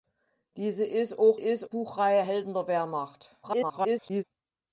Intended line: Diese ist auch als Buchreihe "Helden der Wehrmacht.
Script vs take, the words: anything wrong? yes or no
yes